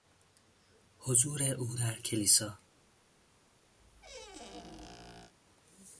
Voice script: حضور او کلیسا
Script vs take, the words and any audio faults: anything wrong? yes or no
yes